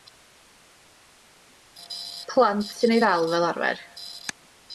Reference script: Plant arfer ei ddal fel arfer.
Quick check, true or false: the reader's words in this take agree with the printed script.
false